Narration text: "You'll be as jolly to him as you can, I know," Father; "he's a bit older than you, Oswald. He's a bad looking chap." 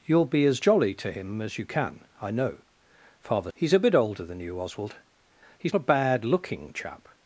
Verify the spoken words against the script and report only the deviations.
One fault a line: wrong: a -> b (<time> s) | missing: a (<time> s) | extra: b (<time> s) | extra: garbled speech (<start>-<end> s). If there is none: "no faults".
no faults